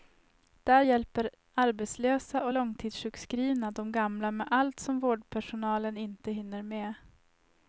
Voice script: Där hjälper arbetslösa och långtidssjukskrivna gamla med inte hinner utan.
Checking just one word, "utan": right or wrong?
wrong